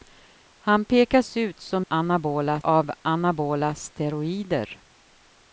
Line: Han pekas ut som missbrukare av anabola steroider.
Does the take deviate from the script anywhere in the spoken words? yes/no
yes